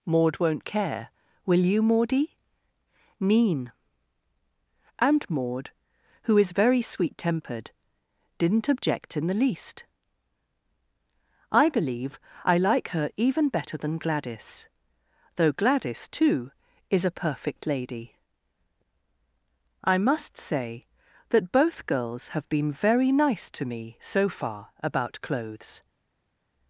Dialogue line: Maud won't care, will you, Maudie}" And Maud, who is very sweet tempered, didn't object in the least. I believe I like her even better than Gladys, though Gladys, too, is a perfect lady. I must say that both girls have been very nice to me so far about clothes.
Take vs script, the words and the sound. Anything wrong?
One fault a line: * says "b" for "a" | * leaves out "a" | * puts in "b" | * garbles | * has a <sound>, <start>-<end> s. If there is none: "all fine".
* puts in "mean"